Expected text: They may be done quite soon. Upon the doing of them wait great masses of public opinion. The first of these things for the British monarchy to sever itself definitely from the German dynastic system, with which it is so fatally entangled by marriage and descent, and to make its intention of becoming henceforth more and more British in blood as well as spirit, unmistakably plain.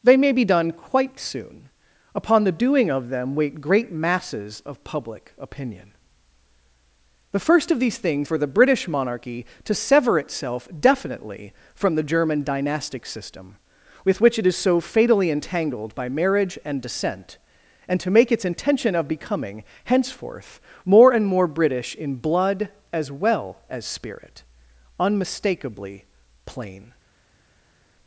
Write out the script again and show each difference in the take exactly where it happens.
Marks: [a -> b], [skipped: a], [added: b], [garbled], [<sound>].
They may be done quite soon. Upon the doing of them wait great masses of public opinion. The first of these things for the British monarchy to sever itself definitely from the German dynastic system, with which it is so fatally entangled by marriage and descent, and to make its intention of becoming henceforth more and more British in blood as well as spirit, unmistakably plain.